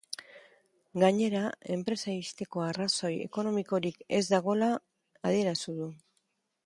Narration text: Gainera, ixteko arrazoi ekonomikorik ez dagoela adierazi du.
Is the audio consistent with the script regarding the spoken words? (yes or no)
no